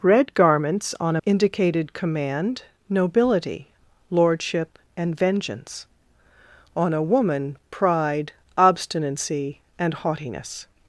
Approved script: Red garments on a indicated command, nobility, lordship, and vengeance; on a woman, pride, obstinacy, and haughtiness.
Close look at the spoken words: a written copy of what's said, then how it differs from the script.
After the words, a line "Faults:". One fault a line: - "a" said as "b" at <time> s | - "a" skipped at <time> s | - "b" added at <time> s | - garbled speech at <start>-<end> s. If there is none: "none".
Red garments on a indicated command, nobility, lordship, and vengeance; on a woman, pride, obstinacy, and haughtiness.
Faults:
none